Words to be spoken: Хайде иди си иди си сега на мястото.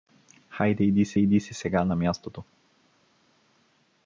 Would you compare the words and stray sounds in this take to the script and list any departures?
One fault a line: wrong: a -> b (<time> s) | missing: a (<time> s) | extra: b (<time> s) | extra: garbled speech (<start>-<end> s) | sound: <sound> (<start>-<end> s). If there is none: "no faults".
no faults